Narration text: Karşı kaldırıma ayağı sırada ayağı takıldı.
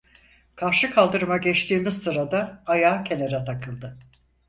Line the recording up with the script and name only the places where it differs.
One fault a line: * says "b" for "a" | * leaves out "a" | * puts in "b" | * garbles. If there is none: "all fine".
* says "geçtiğimiz" for "ayağı"
* puts in "kenara"